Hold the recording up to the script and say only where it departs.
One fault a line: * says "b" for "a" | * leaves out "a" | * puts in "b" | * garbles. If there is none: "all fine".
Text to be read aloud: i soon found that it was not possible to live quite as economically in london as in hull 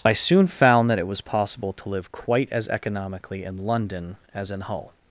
* leaves out "not"